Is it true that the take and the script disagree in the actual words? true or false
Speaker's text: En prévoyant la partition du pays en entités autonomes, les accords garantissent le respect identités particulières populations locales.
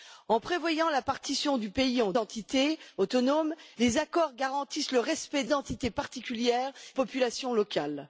false